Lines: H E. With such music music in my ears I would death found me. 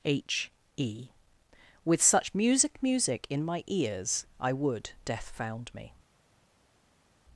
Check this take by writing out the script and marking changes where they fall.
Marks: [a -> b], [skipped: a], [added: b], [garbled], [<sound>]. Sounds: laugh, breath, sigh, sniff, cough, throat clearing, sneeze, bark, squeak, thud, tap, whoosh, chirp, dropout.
H E. With such music music in my ears I would death found me.